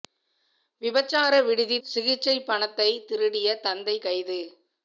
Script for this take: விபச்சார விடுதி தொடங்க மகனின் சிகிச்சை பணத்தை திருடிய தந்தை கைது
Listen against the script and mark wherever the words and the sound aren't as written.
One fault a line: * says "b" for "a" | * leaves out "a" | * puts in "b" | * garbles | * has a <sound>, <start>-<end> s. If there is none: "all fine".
* leaves out "தொடங்க மகனின்"